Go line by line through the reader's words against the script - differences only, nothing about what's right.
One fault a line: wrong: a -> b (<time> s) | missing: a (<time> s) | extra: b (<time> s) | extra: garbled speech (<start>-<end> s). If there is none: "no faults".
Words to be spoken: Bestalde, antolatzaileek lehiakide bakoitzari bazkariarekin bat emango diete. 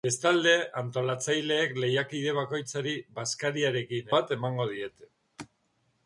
no faults